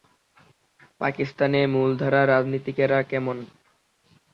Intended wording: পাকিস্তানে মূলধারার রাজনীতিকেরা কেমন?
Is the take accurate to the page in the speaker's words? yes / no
yes